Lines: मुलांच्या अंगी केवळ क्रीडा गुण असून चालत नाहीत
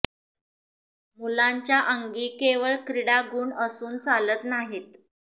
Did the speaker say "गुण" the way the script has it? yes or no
yes